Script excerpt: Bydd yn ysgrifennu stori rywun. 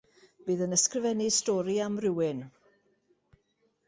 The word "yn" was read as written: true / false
true